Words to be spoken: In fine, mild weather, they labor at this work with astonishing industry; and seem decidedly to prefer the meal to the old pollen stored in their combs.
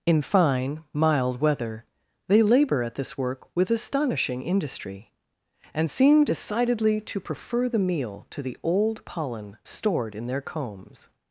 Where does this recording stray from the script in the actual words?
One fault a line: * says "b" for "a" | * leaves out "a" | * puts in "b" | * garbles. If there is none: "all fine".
all fine